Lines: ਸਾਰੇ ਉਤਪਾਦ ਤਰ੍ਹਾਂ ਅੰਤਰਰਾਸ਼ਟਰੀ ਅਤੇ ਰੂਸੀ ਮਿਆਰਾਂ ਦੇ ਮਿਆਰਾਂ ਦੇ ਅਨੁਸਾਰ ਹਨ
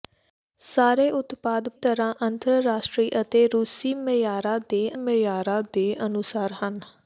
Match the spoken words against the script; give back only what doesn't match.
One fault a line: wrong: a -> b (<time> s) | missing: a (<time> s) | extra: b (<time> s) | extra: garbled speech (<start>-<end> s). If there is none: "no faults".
no faults